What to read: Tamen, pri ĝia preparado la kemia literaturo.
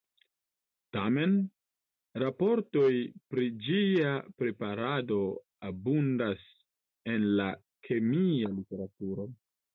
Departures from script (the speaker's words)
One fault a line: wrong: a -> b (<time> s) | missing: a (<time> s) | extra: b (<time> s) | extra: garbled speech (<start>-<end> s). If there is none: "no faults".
extra: raportoj (2.2 s)
extra: abundas en (5.7 s)